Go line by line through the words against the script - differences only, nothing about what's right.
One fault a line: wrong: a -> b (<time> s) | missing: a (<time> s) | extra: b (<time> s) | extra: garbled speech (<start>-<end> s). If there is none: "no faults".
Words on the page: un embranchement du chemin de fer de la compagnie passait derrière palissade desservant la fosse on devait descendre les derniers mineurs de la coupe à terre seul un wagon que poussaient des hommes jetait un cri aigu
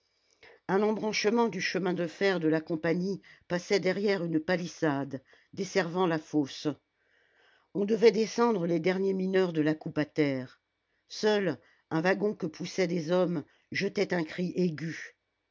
extra: une (4.2 s)